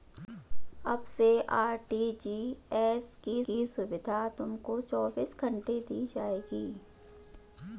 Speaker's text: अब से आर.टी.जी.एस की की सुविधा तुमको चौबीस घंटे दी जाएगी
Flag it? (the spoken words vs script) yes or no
no